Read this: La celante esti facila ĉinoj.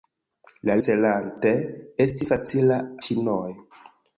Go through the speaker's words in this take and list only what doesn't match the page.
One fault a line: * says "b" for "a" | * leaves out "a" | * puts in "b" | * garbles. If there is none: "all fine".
all fine